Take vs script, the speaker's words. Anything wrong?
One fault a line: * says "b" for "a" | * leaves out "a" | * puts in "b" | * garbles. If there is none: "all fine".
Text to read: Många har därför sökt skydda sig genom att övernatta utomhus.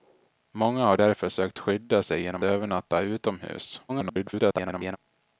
* leaves out "att"
* garbles